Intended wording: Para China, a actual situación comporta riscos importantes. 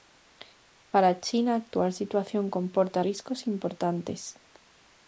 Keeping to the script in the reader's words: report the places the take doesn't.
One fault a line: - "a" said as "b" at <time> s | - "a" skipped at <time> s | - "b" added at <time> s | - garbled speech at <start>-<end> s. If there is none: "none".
none